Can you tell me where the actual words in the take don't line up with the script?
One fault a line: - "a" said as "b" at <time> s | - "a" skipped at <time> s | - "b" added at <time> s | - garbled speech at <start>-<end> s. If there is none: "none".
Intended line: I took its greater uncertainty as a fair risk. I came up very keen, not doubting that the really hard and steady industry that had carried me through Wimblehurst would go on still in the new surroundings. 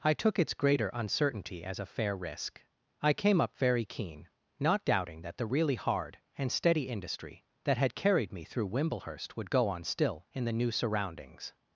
none